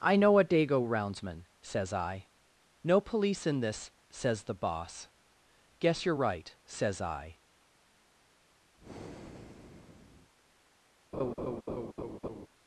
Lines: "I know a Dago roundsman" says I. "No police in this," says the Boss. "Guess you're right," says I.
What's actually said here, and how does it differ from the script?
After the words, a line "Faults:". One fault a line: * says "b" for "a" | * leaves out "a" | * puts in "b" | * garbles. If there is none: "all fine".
"I know a Dago roundsman" says I. "No police in this," says the Boss. "Guess you're right," says I.
Faults:
all fine